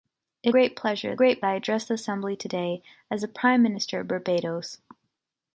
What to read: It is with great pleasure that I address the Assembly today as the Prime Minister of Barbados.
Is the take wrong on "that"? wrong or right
wrong